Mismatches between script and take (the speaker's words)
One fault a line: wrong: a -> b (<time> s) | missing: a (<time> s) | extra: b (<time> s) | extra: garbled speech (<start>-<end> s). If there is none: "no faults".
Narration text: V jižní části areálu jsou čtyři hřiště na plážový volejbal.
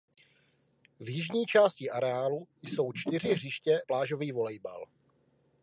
missing: na (3.8 s)